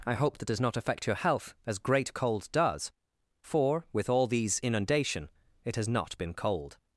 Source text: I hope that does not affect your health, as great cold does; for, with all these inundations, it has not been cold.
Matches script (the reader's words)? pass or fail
fail